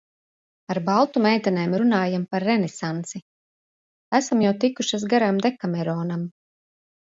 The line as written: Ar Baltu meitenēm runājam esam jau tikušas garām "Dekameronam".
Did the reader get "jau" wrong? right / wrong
right